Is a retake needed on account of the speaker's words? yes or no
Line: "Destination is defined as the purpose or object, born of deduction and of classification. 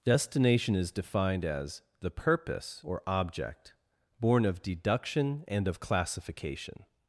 no